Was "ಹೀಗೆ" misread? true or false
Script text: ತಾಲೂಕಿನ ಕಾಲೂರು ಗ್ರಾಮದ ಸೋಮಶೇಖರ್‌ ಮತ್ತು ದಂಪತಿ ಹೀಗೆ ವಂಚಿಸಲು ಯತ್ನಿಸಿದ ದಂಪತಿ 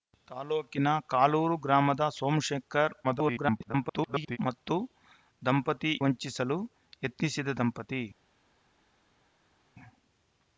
true